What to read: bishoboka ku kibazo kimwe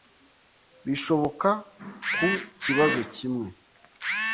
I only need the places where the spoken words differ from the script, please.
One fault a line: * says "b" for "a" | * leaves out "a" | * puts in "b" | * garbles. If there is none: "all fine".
all fine